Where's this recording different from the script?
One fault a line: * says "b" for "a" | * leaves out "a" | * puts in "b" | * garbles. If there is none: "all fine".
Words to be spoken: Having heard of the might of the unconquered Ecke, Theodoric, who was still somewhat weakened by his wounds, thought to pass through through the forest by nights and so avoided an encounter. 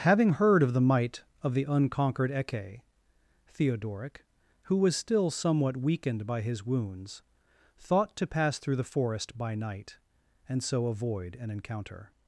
* leaves out "through"
* says "night" for "nights"
* says "avoid" for "avoided"